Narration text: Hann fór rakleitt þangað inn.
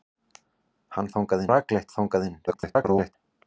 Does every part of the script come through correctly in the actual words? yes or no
no